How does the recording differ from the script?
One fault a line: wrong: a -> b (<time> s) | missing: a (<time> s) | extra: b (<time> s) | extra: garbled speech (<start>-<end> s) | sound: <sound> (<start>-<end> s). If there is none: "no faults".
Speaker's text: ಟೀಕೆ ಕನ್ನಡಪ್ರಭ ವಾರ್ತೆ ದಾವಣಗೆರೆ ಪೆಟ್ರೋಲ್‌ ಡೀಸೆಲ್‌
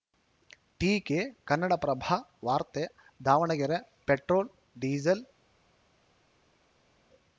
no faults